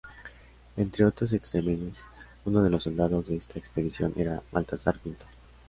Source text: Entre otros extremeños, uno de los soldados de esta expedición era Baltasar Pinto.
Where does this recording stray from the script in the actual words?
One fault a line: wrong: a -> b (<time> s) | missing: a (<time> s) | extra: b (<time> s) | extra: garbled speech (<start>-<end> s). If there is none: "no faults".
no faults